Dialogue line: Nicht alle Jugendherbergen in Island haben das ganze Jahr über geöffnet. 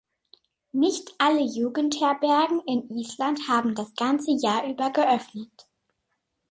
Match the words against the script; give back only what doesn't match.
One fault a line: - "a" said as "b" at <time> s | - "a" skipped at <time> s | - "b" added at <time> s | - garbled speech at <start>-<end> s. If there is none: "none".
none